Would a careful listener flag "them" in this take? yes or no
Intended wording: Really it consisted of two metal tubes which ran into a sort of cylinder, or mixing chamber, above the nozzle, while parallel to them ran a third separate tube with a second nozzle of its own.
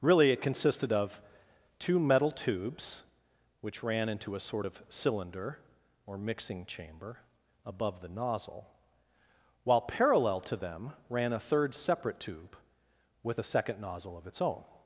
no